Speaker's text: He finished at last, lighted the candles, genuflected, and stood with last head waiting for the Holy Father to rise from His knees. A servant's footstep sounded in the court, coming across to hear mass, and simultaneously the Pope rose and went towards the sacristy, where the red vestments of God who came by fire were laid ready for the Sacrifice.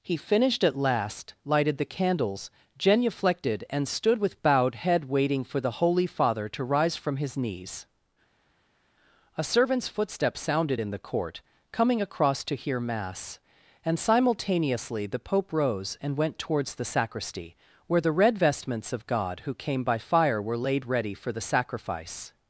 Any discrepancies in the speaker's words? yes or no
yes